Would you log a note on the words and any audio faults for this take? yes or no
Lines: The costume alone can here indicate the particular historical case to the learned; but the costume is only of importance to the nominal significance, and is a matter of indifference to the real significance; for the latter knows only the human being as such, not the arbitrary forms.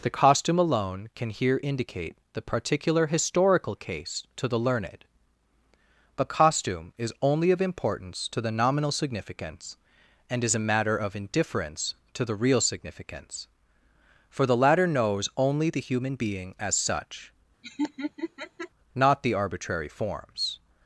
yes